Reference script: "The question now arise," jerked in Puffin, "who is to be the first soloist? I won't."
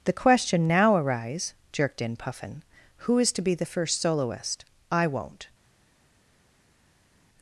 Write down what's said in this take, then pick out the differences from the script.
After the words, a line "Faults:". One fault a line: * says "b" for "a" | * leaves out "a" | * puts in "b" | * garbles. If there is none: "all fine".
"The question now arise," jerked in Puffin, "who is to be the first soloist? I won't."
Faults:
all fine